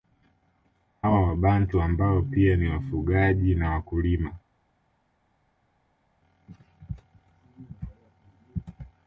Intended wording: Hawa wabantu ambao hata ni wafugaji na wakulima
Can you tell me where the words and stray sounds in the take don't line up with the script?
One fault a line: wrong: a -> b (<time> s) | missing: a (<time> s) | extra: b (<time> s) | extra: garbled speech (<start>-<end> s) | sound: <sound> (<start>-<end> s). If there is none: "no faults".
wrong: hata -> pia (2.2 s)